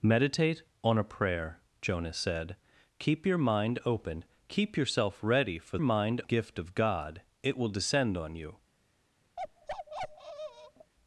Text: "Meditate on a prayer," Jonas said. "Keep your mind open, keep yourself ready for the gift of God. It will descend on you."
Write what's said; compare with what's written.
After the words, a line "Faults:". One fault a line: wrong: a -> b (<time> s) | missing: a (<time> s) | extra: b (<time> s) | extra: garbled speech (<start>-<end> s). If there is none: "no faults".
"Meditate on a prayer," Jonas said. "Keep your mind open, keep yourself ready for mind gift of God. It will descend on you."
Faults:
wrong: the -> mind (5.8 s)